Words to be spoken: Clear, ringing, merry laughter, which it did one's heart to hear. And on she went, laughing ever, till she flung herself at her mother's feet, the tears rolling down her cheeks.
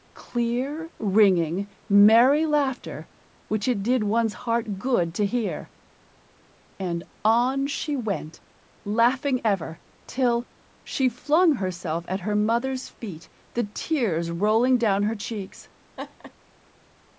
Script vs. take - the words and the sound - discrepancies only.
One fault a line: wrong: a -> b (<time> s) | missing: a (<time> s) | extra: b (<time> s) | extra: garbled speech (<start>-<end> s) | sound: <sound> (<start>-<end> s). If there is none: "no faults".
extra: good (4.8 s)
sound: laugh (16.0-16.3 s)